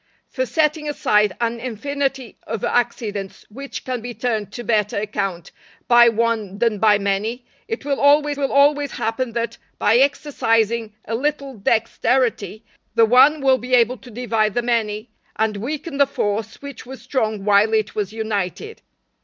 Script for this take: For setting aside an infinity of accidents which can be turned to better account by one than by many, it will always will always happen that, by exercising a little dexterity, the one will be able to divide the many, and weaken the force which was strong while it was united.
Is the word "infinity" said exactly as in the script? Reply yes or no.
yes